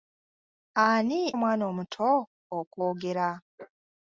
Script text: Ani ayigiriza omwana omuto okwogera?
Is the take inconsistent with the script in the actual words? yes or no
yes